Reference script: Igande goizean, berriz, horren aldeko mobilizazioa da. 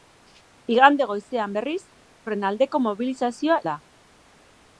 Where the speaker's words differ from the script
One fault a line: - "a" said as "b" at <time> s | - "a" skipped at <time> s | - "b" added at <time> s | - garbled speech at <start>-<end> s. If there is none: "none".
none